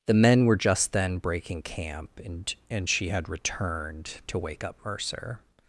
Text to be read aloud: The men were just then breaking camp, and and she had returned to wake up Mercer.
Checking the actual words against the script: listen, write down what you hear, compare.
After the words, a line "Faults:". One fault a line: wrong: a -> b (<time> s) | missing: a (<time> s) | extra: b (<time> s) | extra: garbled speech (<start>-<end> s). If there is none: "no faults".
The men were just then breaking camp, and and she had returned to wake up Mercer.
Faults:
no faults